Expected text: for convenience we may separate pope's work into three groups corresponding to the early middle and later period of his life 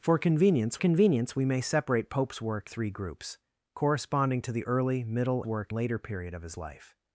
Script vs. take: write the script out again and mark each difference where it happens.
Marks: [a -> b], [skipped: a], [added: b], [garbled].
for convenience [added: convenience] we may separate pope's work [skipped: into] three groups corresponding to the early middle [and -> work] later period of his life